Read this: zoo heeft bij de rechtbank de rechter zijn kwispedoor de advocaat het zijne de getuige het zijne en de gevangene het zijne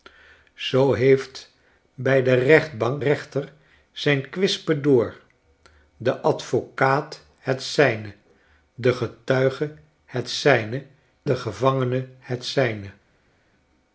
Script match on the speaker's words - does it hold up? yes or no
no